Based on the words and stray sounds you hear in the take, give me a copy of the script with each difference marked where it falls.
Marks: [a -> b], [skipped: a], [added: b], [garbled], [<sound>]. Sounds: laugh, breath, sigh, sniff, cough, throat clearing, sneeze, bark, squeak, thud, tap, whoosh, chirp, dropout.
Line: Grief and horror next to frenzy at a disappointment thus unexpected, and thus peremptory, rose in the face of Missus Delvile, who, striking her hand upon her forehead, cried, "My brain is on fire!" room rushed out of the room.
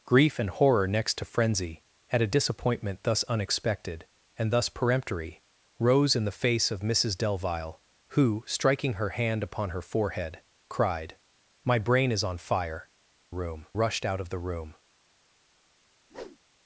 Grief and horror next to frenzy at a disappointment thus unexpected, and thus peremptory, rose in the face of Missus Delvile, who, striking her hand upon her forehead, cried, "My brain is on fire!" room rushed out of the room. [whoosh]